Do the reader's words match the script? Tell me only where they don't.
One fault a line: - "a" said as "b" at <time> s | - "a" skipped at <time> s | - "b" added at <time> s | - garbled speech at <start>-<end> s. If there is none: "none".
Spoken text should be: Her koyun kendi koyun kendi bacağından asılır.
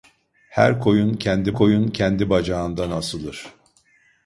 none